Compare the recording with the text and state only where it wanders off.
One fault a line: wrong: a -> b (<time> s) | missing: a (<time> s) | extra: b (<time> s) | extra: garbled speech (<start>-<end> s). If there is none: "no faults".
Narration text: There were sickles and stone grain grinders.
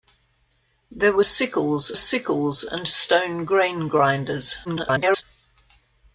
extra: sickles (2.0 s)
extra: garbled speech (4.6-5.2 s)